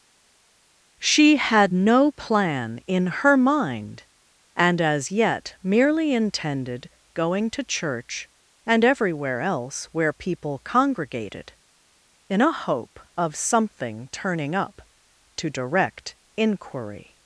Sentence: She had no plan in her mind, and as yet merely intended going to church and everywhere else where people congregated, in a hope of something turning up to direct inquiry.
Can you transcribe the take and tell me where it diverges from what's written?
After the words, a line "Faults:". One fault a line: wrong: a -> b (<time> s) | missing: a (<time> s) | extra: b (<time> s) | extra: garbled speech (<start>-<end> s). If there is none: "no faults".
She had no plan in her mind, and as yet merely intended going to church and everywhere else where people congregated, in a hope of something turning up to direct inquiry.
Faults:
no faults